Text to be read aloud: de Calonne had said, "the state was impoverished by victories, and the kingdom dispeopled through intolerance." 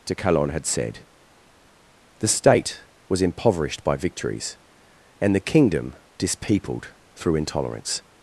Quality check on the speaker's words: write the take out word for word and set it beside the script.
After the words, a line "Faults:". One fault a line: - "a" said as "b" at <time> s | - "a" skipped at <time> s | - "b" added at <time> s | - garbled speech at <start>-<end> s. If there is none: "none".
de Calonne had said, "the state was impoverished by victories, and the kingdom dispeopled through intolerance."
Faults:
none